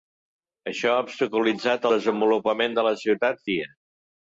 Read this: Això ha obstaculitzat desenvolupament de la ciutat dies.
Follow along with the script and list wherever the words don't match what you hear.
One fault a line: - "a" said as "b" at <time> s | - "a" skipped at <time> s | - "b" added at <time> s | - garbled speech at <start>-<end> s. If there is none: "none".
none